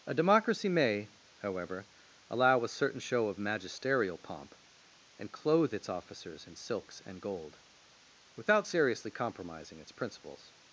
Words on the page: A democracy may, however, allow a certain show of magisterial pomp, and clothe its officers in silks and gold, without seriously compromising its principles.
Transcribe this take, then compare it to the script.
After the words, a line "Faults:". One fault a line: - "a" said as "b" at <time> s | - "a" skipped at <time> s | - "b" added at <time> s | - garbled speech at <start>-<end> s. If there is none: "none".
A democracy may, however, allow a certain show of magisterial pomp, and clothe its officers in silks and gold, without seriously compromising its principles.
Faults:
none